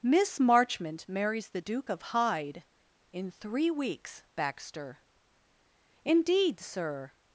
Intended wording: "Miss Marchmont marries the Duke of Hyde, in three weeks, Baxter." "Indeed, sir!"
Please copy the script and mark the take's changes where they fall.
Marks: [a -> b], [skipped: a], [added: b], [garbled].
"Miss Marchmont marries the Duke of Hyde, in three weeks, Baxter." "Indeed, sir!"